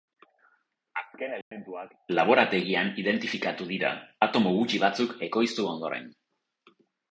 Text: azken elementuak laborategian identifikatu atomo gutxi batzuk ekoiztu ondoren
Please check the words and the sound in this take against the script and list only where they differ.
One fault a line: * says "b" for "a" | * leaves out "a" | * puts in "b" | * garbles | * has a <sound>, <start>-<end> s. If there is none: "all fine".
* has a dropout, 1.4-1.5 s
* puts in "dira"